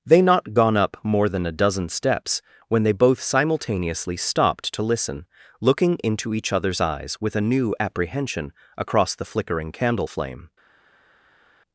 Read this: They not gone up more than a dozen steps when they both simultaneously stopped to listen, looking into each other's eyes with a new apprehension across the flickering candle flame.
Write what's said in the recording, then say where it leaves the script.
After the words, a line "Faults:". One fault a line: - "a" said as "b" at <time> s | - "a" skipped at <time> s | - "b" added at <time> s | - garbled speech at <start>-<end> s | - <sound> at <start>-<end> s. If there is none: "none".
They not gone up more than a dozen steps when they both simultaneously stopped to listen, looking into each other's eyes with a new apprehension across the flickering candle flame.
Faults:
none